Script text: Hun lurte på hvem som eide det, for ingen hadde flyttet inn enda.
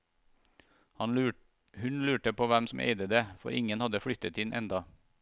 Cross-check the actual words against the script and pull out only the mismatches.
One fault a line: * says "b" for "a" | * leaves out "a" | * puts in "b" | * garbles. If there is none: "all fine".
all fine